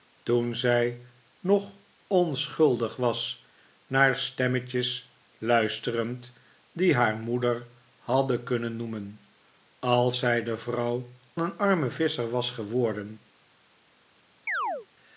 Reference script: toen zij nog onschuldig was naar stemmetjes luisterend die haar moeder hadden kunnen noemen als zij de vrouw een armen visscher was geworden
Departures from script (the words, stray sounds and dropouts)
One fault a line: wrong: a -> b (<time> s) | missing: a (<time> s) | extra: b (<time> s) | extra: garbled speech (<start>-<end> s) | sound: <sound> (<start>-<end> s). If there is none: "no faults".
sound: chirp (14.5-14.9 s)